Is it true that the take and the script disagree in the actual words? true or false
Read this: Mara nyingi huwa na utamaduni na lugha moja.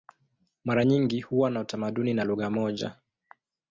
false